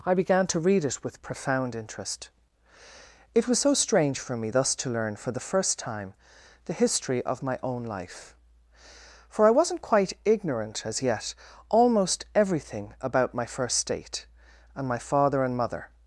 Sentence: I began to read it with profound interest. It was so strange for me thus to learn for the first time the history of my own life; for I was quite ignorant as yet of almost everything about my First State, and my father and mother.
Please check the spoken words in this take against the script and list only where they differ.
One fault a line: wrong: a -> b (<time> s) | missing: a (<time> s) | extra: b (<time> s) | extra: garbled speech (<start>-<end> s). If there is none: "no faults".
wrong: was -> wasn't (9.5 s)
missing: of (11.3 s)